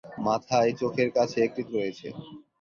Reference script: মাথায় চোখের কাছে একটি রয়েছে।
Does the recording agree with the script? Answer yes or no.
yes